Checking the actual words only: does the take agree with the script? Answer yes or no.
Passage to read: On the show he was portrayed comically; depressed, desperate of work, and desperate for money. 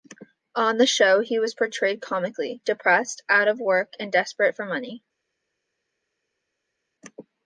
no